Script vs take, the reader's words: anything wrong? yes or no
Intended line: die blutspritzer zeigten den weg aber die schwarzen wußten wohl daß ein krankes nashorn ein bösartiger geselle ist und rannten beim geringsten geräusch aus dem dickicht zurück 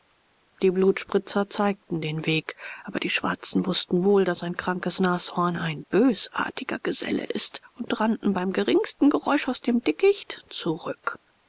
no